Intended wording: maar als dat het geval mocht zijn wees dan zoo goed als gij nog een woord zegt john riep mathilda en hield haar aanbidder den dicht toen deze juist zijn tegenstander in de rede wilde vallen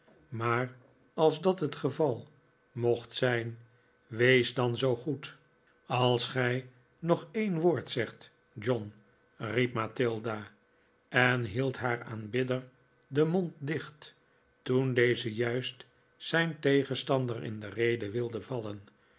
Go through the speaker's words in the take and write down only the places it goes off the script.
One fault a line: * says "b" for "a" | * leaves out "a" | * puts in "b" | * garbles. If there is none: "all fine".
* puts in "mond"